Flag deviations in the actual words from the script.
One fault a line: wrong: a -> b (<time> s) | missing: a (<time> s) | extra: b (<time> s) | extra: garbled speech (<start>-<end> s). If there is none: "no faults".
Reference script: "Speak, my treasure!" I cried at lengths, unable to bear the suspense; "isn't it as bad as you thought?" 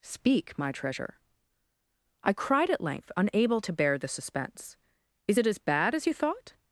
wrong: lengths -> length (2.8 s)
wrong: isn't -> is (5.3 s)